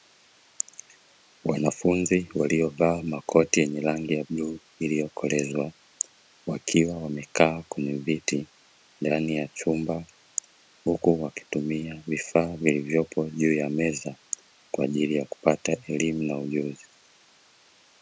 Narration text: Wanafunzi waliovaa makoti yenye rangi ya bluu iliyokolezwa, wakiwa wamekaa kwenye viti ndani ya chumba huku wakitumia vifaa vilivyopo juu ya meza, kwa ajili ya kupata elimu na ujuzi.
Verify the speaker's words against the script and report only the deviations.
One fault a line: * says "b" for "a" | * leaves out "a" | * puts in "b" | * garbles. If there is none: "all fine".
all fine